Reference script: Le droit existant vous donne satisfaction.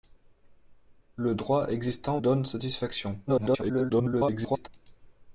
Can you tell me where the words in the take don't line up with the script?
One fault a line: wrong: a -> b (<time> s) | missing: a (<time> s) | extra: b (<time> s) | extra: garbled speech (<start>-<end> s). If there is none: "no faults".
missing: vous (2.2 s)
extra: garbled speech (3.3-4.7 s)